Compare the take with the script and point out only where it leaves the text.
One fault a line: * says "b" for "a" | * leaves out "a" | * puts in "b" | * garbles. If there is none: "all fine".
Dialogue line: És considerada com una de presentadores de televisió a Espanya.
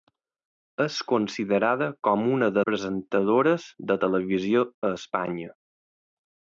all fine